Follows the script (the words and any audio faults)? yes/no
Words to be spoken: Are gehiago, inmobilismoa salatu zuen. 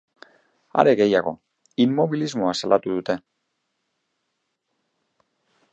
no